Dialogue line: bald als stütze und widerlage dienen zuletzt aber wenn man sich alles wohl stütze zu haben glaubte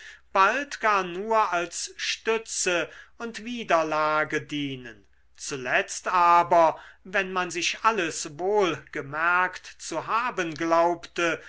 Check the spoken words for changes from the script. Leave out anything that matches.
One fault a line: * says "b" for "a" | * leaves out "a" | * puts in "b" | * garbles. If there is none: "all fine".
* puts in "gar nur"
* says "gemerkt" for "stütze"